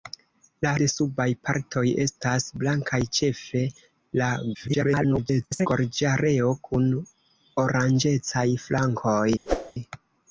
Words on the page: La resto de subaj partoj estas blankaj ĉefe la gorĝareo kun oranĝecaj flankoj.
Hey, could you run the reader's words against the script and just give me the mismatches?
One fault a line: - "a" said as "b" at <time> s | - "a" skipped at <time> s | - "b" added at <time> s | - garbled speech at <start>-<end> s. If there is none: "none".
- "resto" skipped at 0.7 s
- garbled speech at 4.5-5.7 s